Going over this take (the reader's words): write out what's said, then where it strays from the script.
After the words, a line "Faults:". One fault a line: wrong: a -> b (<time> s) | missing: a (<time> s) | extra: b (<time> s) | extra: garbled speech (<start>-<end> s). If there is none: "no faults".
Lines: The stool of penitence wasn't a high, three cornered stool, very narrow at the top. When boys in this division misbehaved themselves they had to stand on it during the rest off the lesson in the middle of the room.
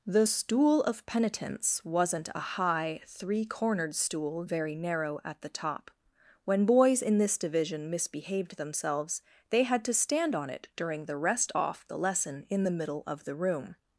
The stool of penitence wasn't a high, three cornered stool, very narrow at the top. When boys in this division misbehaved themselves they had to stand on it during the rest off the lesson in the middle of the room.
Faults:
no faults